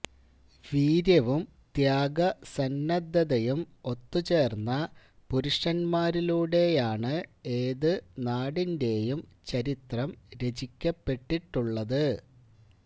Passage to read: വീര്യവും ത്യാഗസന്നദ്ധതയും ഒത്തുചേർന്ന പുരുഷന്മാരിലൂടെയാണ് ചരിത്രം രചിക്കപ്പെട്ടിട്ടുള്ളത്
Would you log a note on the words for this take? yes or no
yes